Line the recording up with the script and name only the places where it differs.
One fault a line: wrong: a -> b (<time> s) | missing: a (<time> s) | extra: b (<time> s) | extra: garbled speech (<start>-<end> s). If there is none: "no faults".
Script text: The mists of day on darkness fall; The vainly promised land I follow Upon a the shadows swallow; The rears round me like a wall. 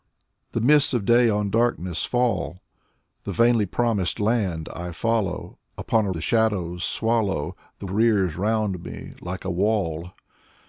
no faults